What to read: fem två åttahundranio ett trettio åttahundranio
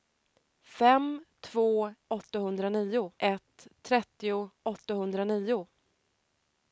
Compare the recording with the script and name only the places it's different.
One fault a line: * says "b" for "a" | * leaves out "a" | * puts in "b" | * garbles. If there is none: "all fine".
all fine